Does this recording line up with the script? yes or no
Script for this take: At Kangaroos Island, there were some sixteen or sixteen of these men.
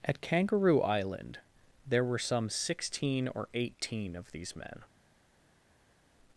no